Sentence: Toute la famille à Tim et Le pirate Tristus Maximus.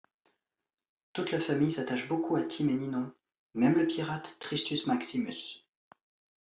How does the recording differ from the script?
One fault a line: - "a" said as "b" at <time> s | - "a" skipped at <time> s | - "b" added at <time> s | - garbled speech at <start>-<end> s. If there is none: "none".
- "s'attache beaucoup" added at 1.7 s
- "Ninon même" added at 2.7 s